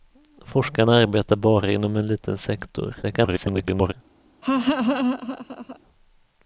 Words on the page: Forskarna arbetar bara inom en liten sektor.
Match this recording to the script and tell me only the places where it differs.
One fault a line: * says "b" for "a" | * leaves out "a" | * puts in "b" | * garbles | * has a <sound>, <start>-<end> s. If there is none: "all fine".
* garbles
* has a laugh, 4.4-5.8 s